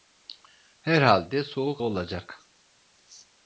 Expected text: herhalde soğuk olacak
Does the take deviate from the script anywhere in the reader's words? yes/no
no